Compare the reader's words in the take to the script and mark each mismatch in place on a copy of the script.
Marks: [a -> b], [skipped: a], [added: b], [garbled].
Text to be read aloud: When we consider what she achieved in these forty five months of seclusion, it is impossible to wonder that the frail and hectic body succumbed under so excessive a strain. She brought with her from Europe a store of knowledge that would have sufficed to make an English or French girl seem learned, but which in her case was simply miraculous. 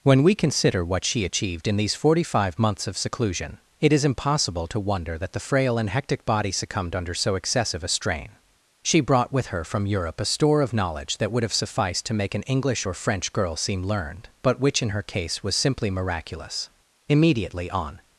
When we consider what she achieved in these forty five months of seclusion, it is impossible to wonder that the frail and hectic body succumbed under so excessive a strain. She brought with her from Europe a store of knowledge that would have sufficed to make an English or French girl seem learned, but which in her case was simply miraculous. [added: Immediately on]